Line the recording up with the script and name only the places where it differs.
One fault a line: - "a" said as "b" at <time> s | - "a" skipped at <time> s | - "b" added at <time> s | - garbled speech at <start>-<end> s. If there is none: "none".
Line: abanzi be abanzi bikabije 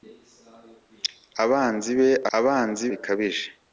none